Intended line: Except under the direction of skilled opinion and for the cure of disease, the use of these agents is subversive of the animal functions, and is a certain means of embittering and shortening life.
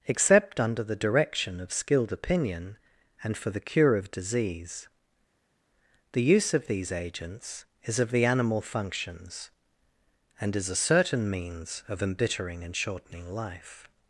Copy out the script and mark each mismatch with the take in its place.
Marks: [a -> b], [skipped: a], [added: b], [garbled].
Except under the direction of skilled opinion and for the cure of disease, the use of these agents is [skipped: subversive] of the animal functions, and is a certain means of embittering and shortening life.